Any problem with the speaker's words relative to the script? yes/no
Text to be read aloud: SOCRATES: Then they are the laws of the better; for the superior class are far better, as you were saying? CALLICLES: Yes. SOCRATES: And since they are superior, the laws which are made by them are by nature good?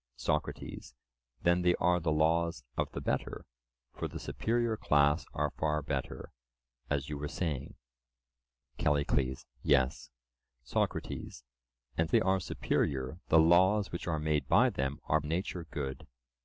yes